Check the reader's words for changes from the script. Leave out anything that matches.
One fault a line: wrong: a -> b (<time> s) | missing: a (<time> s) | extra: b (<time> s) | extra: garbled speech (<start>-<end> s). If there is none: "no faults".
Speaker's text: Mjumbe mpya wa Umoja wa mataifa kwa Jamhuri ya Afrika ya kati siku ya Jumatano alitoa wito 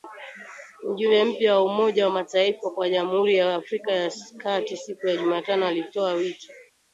no faults